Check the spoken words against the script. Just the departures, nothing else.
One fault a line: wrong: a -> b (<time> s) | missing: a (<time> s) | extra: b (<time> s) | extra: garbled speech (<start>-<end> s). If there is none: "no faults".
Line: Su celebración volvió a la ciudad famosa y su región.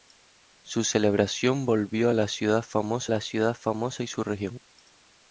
extra: la ciudad famosa (3.1 s)